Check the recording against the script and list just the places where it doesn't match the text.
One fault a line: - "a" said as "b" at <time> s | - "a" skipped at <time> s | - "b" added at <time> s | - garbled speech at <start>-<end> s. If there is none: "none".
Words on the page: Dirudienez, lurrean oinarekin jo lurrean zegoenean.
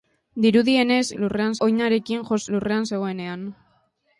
none